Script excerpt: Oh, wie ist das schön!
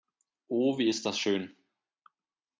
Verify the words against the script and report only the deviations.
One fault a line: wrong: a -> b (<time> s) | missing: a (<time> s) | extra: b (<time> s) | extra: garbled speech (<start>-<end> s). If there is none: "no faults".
no faults